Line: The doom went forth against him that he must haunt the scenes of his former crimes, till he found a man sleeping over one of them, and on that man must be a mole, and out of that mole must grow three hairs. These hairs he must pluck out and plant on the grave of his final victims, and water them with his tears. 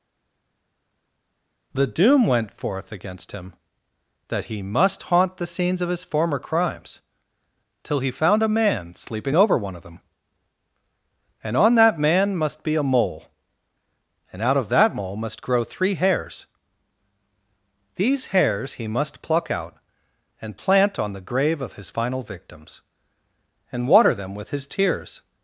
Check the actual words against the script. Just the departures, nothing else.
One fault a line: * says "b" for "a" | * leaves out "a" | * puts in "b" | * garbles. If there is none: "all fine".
all fine